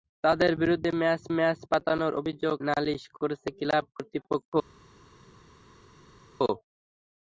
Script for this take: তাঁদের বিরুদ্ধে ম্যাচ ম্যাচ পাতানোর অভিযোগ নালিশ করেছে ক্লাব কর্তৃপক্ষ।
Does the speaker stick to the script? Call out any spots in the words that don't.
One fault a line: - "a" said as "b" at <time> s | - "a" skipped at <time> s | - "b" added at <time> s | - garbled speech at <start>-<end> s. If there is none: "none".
none